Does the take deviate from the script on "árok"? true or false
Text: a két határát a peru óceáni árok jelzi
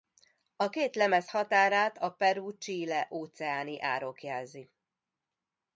false